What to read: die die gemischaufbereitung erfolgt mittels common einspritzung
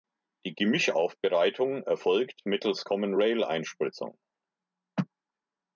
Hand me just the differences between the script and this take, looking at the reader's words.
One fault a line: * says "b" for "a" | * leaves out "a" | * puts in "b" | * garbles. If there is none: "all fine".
* leaves out "die"
* puts in "rail"